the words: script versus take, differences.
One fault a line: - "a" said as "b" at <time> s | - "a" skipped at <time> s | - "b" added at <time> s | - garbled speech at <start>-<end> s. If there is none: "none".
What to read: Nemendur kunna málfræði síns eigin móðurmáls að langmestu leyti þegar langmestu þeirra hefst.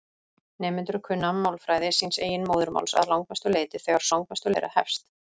none